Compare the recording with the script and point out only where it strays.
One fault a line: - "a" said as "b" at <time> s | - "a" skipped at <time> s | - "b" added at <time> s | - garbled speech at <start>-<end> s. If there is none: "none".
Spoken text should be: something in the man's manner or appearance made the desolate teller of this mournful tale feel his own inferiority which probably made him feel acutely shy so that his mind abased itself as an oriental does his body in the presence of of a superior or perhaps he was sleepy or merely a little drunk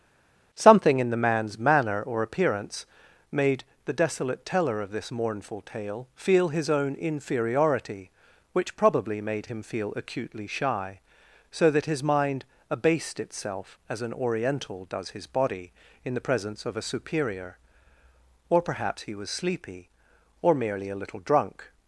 - "of" skipped at 16.8 s